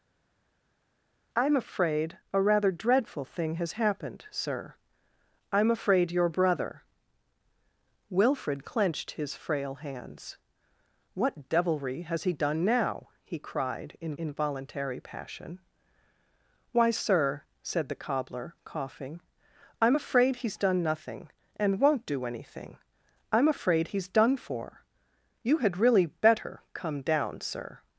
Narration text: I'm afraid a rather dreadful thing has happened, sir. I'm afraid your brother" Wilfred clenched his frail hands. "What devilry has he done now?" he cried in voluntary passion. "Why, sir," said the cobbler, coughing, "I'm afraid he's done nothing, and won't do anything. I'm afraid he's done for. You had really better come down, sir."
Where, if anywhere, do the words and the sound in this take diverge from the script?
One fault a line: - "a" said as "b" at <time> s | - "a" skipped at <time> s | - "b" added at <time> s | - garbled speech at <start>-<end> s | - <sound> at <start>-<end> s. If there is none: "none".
- "in" added at 14.1 s